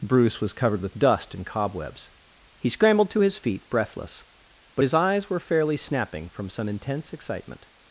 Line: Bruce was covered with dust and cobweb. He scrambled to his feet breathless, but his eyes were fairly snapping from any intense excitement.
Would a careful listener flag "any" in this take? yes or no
yes